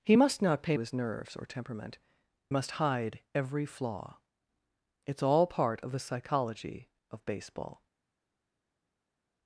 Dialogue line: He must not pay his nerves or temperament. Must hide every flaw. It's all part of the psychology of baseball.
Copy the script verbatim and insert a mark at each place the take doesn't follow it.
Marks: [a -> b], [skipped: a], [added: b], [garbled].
He must not pay his nerves or temperament. Must hide every flaw. It's all part of the psychology of baseball.